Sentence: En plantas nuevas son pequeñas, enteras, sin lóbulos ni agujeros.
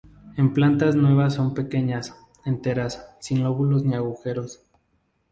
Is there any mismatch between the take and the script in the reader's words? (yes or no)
no